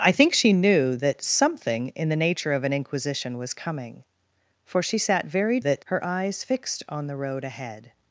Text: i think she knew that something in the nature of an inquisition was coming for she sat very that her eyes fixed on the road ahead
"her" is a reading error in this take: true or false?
false